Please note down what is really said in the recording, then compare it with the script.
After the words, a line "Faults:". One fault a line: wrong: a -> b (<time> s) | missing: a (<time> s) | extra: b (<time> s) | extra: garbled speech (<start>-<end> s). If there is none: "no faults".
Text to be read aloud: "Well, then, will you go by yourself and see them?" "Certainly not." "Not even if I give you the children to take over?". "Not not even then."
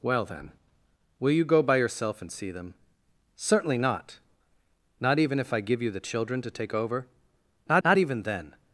"Well, then, will you go by yourself and see them?" "Certainly not." "Not even if I give you the children to take over?". "Not not even then."
Faults:
no faults